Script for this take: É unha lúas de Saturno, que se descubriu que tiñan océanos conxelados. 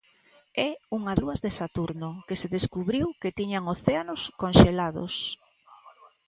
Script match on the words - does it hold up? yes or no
yes